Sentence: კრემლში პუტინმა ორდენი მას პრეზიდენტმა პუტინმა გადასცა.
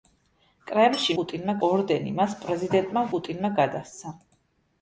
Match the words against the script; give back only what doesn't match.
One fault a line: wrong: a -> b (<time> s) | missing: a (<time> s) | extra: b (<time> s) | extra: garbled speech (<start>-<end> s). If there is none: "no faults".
no faults